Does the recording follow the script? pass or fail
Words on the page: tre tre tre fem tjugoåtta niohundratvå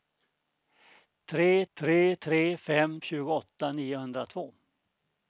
pass